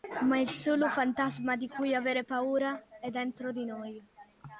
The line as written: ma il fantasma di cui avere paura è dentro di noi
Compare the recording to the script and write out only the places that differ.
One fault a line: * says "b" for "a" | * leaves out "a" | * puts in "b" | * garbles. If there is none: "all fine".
* puts in "solo"